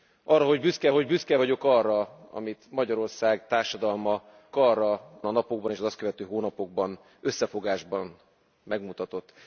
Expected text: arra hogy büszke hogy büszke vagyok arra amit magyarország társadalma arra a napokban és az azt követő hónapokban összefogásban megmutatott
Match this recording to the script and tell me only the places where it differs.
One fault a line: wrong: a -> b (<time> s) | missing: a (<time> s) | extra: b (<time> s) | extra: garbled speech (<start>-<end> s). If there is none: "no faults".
no faults